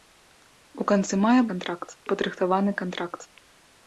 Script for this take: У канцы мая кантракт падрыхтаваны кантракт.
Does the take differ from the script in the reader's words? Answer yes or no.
no